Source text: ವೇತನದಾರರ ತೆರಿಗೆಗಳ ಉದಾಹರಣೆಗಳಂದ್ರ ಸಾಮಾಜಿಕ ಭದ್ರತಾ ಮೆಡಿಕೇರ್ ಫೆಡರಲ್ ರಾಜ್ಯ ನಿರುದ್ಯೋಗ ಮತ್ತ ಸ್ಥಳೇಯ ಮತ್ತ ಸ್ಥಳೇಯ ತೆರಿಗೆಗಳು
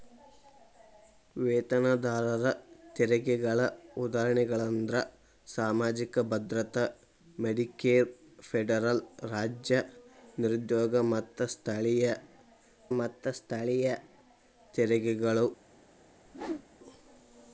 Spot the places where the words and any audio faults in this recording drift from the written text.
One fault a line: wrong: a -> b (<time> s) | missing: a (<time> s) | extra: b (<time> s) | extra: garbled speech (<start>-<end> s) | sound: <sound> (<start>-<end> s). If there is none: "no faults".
sound: whoosh (16.2-16.7 s)